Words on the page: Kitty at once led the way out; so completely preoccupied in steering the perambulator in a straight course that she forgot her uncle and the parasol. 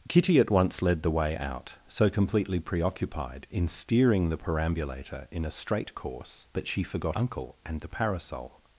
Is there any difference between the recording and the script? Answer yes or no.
yes